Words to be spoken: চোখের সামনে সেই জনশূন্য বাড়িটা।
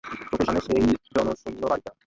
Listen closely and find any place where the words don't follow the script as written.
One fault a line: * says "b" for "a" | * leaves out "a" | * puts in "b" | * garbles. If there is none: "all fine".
all fine